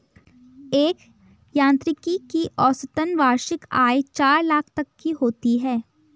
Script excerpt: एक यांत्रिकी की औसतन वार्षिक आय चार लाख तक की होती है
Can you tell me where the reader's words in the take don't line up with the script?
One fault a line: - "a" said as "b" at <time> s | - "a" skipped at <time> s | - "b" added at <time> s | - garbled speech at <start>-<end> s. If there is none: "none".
none